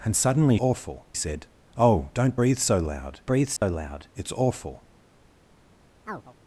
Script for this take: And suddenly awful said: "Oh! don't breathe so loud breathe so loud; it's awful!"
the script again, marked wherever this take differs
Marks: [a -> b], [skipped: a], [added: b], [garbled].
And suddenly awful said: "Oh! don't breathe so loud breathe so loud; it's awful!"